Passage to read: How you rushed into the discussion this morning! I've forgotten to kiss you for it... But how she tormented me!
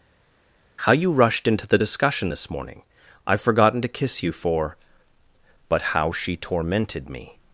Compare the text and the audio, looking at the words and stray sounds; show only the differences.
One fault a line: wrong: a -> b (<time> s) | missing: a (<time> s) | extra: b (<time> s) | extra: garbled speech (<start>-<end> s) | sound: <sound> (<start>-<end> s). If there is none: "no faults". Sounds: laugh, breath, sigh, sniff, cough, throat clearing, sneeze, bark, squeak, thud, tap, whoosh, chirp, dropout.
missing: it (4.8 s)